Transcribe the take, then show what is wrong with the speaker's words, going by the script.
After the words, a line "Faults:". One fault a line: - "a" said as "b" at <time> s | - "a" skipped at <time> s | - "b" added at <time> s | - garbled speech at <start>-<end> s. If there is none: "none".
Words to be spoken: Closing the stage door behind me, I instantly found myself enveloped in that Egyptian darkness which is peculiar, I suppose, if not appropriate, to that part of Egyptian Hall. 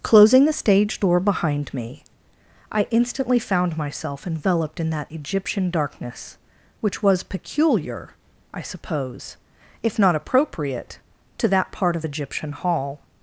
Closing the stage door behind me, I instantly found myself enveloped in that Egyptian darkness which was peculiar, I suppose, if not appropriate, to that part of Egyptian Hall.
Faults:
- "is" said as "was" at 7.0 s